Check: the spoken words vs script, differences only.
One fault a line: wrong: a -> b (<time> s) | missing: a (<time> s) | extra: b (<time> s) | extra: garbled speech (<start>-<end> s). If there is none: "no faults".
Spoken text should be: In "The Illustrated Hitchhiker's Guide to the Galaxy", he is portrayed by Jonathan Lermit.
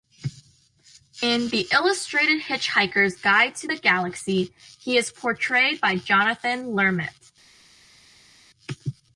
no faults